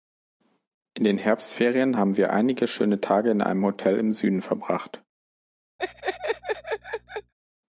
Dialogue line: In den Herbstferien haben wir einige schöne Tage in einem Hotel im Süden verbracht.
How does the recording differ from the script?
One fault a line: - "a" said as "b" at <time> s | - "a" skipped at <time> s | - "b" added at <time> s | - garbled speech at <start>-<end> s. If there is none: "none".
none